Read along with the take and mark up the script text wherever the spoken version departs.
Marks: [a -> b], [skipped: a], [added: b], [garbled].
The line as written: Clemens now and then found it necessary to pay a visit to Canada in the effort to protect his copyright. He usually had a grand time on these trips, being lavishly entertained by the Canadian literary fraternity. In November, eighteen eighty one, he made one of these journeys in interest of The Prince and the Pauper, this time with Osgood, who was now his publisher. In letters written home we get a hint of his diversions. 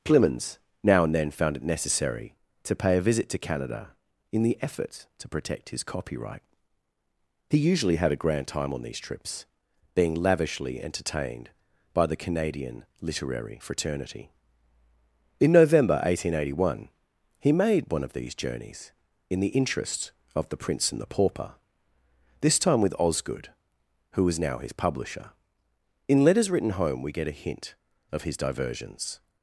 Clemens now and then found it necessary to pay a visit to Canada in the effort to protect his copyright. He usually had a grand time on these trips, being lavishly entertained by the Canadian literary fraternity. In November, eighteen eighty one, he made one of these journeys in [added: the] interest of The Prince and the Pauper, this time with Osgood, who was now his publisher. In letters written home we get a hint of his diversions.